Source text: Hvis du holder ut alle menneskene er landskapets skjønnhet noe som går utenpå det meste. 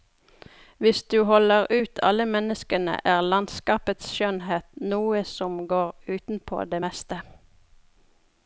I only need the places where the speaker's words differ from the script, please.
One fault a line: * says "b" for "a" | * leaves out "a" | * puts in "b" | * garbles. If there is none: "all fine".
all fine